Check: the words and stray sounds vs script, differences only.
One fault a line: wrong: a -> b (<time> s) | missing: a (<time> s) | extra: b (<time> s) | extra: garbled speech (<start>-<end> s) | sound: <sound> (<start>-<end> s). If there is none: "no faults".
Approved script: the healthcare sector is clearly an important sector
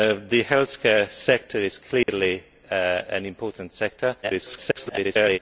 sound: dropout (2.0-2.1 s)
extra: garbled speech (4.2-5.4 s)